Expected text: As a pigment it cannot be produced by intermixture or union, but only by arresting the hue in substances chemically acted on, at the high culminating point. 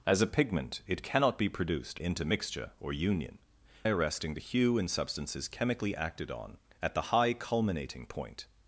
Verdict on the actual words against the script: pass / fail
fail